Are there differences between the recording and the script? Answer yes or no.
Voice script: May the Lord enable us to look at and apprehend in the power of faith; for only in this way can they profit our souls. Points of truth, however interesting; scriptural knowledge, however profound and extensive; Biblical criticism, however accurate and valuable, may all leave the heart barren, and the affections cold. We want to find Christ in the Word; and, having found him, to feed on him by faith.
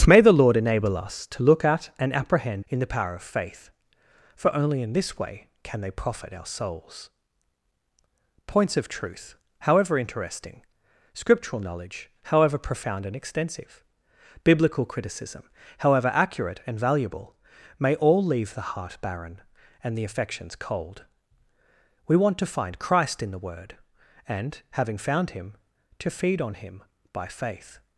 no